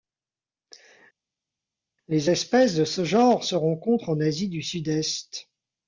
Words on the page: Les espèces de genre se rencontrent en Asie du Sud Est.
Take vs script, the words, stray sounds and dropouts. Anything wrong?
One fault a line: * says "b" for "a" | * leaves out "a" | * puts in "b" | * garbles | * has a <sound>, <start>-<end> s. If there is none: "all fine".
* puts in "ce"